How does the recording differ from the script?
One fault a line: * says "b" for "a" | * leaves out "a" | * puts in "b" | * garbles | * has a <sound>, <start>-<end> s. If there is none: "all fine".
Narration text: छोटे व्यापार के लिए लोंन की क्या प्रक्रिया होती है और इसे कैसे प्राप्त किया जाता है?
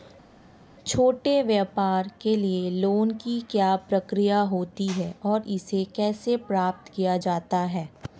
all fine